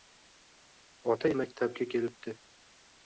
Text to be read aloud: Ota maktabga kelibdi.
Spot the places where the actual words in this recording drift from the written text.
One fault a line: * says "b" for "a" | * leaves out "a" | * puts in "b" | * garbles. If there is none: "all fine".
all fine